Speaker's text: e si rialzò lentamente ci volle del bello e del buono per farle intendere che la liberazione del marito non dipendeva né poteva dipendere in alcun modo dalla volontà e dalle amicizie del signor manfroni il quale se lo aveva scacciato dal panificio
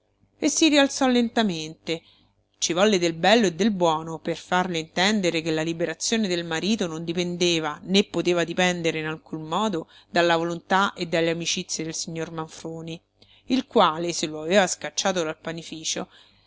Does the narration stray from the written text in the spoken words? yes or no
no